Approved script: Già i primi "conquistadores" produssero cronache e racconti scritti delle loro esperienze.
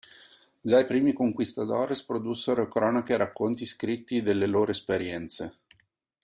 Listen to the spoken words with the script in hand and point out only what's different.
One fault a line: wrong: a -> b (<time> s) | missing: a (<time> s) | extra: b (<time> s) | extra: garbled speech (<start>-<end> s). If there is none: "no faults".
no faults